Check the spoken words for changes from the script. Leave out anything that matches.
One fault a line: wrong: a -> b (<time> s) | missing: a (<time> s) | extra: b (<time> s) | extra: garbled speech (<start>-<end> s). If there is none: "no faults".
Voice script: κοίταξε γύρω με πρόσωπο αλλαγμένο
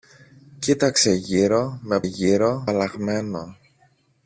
wrong: πρόσωπο -> γύρω (2.0 s)